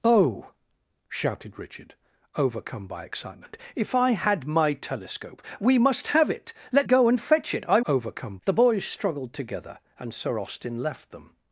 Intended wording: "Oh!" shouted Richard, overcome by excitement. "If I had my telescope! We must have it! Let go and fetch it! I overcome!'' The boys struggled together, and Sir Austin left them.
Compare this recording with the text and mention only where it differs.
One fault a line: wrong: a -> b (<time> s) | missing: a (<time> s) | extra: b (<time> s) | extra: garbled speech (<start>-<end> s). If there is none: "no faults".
no faults